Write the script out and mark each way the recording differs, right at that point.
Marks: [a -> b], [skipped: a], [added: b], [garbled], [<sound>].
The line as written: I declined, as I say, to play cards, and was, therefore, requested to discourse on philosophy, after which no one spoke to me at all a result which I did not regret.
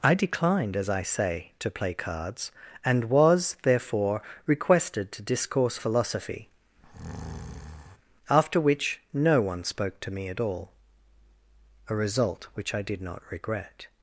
I declined, as I say, to play cards, and was, therefore, requested to discourse [skipped: on] philosophy, [breath] after which no one spoke to me at all a result which I did not regret.